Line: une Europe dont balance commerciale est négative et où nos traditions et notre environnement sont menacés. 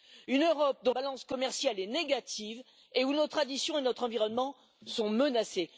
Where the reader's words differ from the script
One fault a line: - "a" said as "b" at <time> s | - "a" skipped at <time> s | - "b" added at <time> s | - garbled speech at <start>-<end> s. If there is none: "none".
none